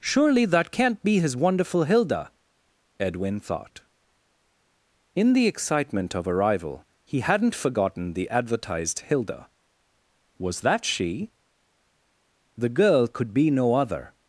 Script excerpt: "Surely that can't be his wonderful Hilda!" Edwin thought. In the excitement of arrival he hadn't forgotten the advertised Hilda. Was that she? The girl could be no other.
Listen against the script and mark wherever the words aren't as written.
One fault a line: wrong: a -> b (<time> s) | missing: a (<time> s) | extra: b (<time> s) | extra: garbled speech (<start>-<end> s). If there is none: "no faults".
no faults